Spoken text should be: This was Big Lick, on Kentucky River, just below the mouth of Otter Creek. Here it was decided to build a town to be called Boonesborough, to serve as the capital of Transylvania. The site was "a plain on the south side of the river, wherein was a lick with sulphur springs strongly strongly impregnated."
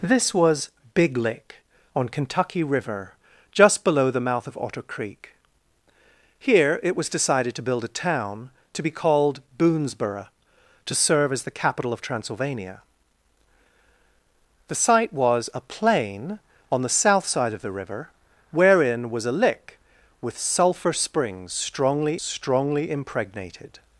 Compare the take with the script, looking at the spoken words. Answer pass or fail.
pass